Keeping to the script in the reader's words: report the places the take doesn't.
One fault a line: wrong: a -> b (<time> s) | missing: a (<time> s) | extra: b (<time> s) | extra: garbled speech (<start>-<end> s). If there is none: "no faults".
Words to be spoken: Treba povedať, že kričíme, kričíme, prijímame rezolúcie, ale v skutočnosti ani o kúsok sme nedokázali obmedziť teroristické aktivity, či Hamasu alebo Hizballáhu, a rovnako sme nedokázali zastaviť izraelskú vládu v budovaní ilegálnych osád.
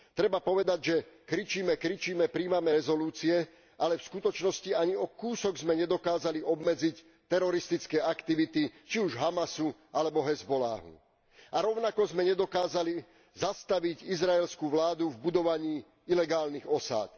extra: už (9.0 s)